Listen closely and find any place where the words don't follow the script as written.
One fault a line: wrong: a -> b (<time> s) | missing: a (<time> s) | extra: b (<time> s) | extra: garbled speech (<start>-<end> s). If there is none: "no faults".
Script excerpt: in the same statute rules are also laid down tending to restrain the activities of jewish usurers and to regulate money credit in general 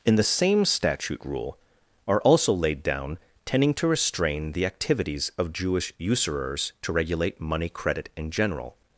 wrong: rules -> rule (1.2 s)
missing: and (6.7 s)